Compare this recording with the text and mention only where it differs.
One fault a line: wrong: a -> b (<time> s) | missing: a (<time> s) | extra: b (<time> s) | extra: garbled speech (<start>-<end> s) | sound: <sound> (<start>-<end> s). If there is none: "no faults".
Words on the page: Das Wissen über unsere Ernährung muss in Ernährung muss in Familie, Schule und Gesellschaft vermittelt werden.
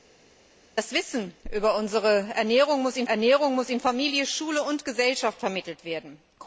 no faults